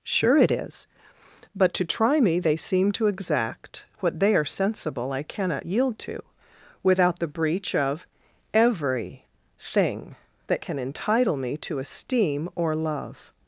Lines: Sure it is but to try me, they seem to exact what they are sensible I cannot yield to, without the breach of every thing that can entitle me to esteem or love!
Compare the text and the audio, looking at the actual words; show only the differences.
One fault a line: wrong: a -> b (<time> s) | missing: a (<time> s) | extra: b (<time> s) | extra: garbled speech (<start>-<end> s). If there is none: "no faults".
no faults